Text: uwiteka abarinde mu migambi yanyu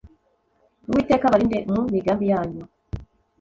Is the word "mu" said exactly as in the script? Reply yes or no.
yes